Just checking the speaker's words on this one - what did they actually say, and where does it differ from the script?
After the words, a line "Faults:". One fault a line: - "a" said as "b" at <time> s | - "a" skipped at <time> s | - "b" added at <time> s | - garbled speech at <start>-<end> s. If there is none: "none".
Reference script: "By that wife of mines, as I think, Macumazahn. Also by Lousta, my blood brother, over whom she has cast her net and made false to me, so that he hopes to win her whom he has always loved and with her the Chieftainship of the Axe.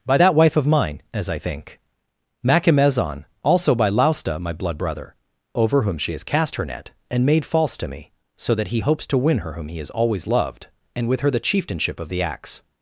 "By that wife of mine, as I think, Macumazahn. Also by Lousta, my blood brother, over whom she has cast her net and made false to me, so that he hopes to win her whom he has always loved and with her the Chieftainship of the Axe.
Faults:
- "mines" said as "mine" at 0.7 s